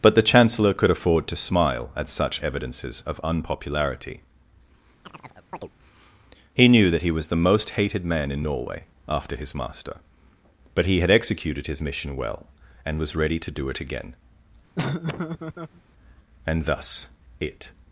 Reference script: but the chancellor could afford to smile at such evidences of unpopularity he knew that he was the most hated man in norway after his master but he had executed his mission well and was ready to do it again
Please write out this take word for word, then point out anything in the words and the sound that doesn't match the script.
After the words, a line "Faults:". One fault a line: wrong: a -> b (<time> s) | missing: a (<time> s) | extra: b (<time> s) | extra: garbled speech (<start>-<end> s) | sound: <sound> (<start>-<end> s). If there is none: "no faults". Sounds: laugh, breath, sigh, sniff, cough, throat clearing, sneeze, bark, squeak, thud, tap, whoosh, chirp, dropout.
but the chancellor could afford to smile at such evidences of unpopularity he knew that he was the most hated man in norway after his master but he had executed his mission well and was ready to do it again and thus it
Faults:
sound: chirp (5.0-5.7 s)
sound: laugh (14.8-15.8 s)
extra: and thus it (16.4 s)